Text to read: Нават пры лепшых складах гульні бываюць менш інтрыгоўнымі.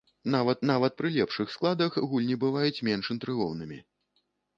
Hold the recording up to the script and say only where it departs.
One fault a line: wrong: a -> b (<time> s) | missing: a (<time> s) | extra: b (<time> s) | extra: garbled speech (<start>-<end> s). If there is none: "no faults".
extra: нават (0.7 s)